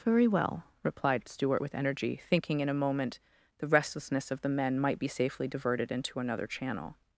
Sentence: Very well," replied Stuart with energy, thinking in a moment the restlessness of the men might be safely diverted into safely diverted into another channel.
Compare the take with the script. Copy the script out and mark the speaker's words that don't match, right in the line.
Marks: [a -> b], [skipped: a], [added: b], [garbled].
Very well," replied Stuart with energy, thinking in a moment the restlessness of the men might be safely diverted into [skipped: safely diverted into] another channel.